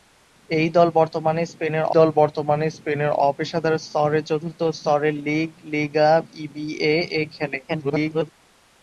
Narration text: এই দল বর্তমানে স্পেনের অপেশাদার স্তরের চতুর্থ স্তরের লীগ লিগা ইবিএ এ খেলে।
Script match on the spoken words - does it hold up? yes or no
no